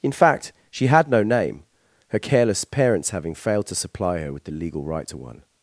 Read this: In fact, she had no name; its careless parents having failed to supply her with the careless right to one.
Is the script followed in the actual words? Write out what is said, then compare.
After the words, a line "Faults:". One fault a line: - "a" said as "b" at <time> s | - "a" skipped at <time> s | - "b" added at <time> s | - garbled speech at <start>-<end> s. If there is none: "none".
In fact, she had no name; her careless parents having failed to supply her with the legal right to one.
Faults:
- "its" said as "her" at 2.1 s
- "careless" said as "legal" at 4.5 s